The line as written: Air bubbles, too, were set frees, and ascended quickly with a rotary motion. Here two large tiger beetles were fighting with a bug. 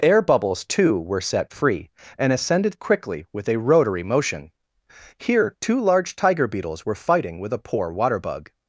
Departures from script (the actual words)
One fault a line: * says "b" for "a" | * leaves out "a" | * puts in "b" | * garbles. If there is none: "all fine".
* says "free" for "frees"
* puts in "poor water"